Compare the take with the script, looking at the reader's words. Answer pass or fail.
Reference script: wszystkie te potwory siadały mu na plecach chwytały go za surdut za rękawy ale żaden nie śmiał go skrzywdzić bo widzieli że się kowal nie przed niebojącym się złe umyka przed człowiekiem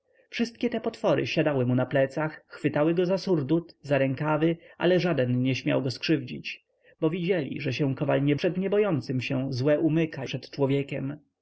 pass